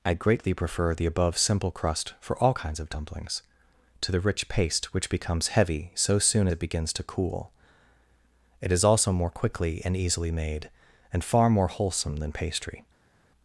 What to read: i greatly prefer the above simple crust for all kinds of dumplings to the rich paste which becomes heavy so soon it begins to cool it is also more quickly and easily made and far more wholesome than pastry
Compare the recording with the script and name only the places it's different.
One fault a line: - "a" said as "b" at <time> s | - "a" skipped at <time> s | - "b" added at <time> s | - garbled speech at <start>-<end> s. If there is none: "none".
none